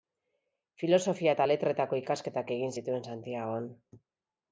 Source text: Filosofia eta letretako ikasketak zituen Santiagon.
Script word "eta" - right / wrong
right